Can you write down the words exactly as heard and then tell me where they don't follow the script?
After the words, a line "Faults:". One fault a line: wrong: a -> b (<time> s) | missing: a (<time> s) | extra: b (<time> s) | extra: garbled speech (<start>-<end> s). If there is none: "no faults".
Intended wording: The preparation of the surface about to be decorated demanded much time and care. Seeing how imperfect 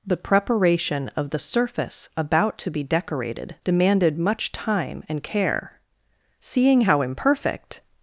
The preparation of the surface about to be decorated demanded much time and care. Seeing how imperfect
Faults:
no faults